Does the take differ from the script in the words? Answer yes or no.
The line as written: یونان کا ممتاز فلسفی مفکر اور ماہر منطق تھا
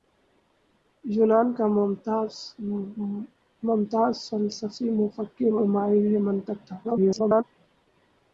yes